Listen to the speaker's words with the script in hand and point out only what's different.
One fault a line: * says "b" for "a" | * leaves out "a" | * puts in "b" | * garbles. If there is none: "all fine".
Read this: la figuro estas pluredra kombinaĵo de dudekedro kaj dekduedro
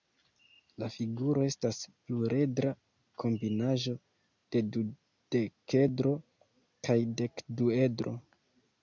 all fine